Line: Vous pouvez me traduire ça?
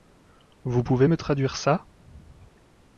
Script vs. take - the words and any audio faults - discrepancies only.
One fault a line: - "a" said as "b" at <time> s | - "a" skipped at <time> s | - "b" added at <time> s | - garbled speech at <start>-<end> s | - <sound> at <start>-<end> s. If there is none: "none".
none